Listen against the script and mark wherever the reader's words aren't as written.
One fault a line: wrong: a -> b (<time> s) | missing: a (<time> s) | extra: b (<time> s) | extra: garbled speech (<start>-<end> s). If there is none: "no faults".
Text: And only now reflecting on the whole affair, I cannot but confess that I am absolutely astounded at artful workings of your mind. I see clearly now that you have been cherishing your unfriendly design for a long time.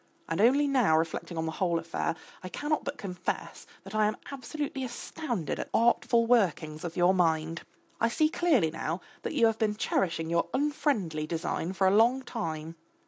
no faults